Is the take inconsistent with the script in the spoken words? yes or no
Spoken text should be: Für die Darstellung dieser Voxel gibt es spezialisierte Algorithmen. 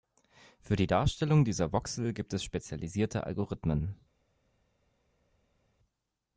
no